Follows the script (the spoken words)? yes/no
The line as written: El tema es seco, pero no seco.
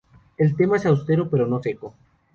no